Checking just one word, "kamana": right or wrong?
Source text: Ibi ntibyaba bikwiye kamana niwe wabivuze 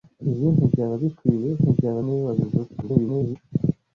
wrong